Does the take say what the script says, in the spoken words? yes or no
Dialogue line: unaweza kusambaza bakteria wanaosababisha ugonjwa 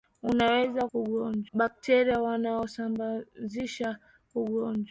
no